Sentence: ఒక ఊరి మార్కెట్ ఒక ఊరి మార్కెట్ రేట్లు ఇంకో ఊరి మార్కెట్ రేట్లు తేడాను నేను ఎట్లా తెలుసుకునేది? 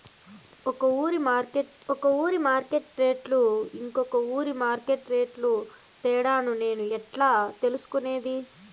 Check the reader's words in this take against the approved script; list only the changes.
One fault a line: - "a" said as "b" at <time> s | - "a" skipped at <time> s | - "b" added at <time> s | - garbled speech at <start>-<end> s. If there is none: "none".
none